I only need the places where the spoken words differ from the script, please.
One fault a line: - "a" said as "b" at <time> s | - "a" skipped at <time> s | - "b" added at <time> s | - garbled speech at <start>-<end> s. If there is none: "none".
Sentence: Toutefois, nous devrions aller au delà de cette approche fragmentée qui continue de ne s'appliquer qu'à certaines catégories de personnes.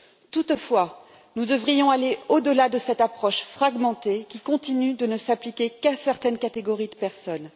none